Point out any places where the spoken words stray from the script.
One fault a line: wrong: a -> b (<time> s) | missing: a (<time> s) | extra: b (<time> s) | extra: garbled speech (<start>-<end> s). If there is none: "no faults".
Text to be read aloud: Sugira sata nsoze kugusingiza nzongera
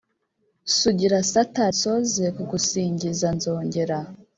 no faults